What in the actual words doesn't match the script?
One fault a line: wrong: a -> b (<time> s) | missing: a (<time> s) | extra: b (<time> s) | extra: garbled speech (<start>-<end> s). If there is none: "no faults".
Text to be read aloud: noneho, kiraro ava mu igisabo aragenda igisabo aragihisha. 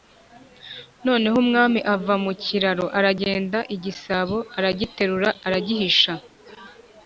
wrong: kiraro -> umwami (1.4 s)
wrong: igisabo -> kiraro (2.4 s)
extra: aragiterura (4.6 s)